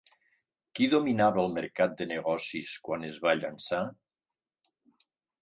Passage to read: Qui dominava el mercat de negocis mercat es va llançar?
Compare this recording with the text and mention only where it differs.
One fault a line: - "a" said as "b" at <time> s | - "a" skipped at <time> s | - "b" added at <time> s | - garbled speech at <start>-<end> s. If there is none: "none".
- "mercat" said as "quan" at 2.9 s